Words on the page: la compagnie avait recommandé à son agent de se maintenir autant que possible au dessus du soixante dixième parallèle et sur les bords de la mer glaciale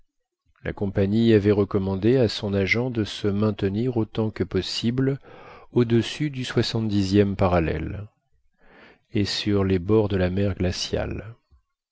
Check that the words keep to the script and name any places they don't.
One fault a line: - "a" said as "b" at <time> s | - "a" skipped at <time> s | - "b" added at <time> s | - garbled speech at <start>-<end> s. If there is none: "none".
none